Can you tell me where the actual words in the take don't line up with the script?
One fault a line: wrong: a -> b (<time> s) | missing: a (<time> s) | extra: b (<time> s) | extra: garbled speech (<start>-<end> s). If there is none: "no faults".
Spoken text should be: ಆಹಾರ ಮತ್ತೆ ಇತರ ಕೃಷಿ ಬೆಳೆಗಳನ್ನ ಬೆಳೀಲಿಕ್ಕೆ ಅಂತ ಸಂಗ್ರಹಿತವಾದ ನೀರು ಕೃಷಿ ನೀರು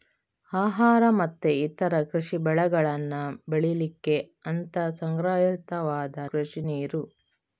missing: ನೀರು (6.2 s)